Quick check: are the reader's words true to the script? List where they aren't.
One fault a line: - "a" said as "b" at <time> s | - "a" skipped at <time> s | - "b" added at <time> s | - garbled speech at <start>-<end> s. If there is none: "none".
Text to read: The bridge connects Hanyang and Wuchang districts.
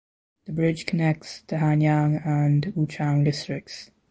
- "the" added at 1.5 s